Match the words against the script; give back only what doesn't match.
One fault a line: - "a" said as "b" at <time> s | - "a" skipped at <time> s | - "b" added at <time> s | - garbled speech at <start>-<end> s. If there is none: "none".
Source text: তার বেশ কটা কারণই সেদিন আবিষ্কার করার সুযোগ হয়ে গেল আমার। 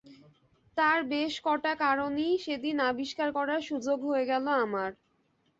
none